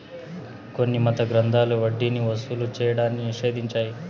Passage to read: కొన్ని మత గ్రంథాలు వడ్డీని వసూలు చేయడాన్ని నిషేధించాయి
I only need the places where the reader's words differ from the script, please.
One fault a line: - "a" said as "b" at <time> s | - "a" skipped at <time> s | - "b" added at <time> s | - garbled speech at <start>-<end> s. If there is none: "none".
none